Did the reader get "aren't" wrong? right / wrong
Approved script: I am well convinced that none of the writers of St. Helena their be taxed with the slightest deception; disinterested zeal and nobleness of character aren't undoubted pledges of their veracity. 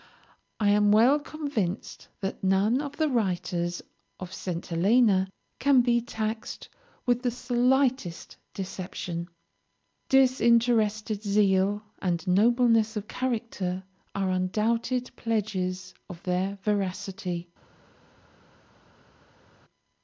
wrong